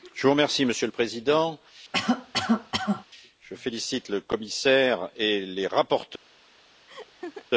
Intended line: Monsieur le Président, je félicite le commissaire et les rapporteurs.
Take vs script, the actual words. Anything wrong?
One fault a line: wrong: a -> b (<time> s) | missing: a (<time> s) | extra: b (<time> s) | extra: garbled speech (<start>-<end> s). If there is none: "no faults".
no faults